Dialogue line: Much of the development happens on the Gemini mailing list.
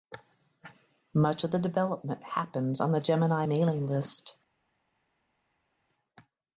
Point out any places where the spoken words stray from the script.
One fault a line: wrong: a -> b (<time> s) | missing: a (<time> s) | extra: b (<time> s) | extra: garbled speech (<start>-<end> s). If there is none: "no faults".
no faults